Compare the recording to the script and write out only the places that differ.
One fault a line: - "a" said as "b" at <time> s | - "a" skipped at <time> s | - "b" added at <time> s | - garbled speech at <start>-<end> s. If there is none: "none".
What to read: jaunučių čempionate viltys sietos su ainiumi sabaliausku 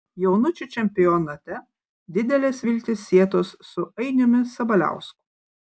- "didelės" added at 2.2 s